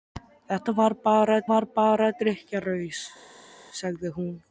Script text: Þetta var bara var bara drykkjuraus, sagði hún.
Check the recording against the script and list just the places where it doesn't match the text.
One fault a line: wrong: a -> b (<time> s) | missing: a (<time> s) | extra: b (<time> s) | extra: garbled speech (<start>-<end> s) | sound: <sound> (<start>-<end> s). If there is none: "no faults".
no faults